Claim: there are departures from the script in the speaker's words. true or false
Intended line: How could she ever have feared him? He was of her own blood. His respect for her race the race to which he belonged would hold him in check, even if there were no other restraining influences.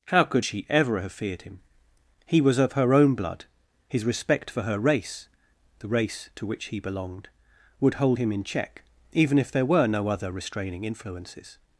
false